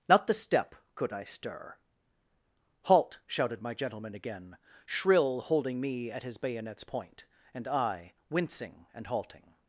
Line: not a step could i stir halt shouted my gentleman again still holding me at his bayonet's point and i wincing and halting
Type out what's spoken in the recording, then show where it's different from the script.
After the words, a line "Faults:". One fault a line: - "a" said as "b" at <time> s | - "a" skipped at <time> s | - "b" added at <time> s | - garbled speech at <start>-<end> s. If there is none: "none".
not the step could i stir halt shouted my gentleman again shrill holding me at his bayonet's point and i wincing and halting
Faults:
- "a" said as "the" at 0.3 s
- "still" said as "shrill" at 4.8 s